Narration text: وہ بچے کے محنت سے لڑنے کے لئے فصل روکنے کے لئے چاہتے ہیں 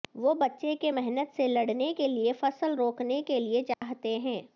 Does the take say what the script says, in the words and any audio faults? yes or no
no